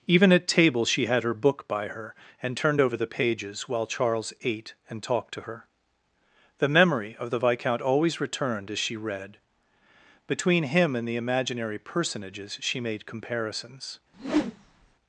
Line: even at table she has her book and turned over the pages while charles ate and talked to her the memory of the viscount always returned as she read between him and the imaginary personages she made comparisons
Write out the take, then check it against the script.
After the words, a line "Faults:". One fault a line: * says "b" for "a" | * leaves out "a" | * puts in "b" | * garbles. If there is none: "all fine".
even at table she had her book by her and turned over the pages while charles ate and talked to her the memory of the viscount always returned as she read between him and the imaginary personages she made comparisons
Faults:
* says "had" for "has"
* puts in "by her"